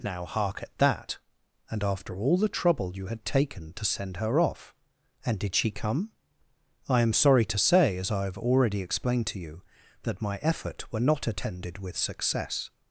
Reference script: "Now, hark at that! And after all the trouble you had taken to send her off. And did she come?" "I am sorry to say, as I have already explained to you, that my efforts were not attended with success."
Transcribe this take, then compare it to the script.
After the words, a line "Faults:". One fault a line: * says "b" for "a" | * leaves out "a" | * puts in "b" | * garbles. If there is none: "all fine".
"Now, hark at that! And after all the trouble you had taken to send her off. And did she come?" "I am sorry to say, as I have already explained to you, that my effort were not attended with success."
Faults:
* says "effort" for "efforts"